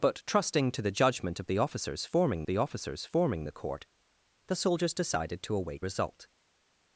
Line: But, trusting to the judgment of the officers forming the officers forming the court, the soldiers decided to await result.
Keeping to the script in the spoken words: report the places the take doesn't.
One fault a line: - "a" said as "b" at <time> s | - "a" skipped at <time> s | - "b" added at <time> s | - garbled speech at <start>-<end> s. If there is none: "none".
none